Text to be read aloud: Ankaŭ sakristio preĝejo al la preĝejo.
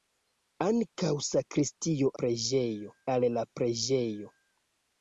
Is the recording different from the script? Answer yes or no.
no